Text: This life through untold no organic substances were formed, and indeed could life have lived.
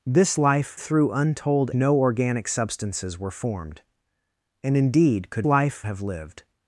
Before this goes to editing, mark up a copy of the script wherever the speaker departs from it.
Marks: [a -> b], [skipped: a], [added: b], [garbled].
This life through untold no organic substances were formed, and indeed could life have lived.